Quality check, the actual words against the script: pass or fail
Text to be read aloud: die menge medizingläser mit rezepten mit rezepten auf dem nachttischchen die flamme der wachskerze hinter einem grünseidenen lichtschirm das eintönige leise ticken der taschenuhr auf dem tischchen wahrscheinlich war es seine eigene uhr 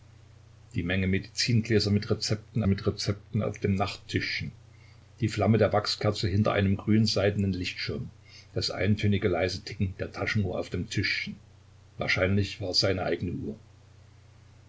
pass